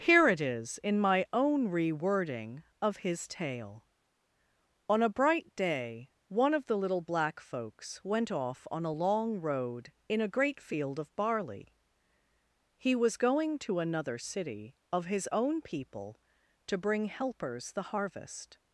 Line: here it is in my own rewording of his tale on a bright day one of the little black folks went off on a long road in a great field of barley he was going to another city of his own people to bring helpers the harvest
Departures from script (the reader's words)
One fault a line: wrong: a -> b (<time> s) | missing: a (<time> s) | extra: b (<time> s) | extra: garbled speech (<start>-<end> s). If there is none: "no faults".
no faults